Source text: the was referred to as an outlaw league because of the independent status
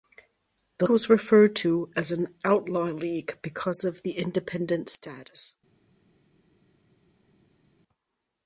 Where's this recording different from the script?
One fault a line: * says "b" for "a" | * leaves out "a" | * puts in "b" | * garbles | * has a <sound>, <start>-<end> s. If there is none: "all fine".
all fine